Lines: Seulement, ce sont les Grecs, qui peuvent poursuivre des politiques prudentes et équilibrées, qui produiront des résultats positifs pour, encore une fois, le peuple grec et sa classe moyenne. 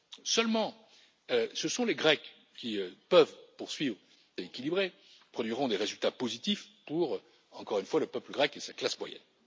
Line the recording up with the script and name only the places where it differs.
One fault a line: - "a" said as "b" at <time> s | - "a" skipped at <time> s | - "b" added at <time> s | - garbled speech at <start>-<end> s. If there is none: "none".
- "des politiques prudentes" skipped at 4.0 s
- "qui" skipped at 4.9 s